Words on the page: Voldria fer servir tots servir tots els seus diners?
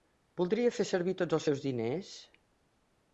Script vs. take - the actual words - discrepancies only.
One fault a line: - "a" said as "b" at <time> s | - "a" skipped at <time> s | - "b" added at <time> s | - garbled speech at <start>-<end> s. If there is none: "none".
- "servir tots" skipped at 1.4 s